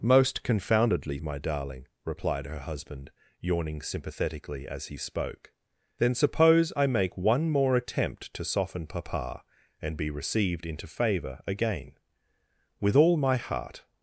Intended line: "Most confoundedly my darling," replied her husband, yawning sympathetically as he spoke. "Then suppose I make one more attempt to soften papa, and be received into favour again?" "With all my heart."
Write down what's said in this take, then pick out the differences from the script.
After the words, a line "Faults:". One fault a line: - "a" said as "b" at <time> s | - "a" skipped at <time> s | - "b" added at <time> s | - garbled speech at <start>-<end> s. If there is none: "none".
"Most confoundedly my darling," replied her husband, yawning sympathetically as he spoke. "Then suppose I make one more attempt to soften papa, and be received into favour again?" "With all my heart."
Faults:
none